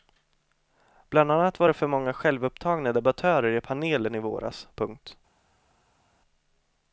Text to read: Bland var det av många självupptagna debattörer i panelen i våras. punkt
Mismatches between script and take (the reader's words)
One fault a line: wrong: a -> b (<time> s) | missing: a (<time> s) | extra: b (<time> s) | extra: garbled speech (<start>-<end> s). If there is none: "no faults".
extra: annat (1.3 s)
wrong: av -> för (1.7 s)